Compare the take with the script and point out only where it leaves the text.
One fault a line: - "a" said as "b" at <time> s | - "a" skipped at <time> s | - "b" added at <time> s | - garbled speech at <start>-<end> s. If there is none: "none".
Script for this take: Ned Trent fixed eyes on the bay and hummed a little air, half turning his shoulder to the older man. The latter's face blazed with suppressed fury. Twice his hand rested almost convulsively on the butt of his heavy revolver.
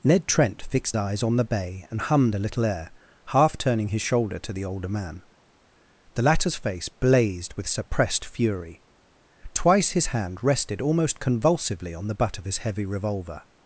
none